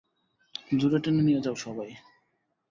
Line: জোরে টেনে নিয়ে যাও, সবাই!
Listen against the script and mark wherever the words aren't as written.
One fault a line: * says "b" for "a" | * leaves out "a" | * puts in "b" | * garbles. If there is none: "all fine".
all fine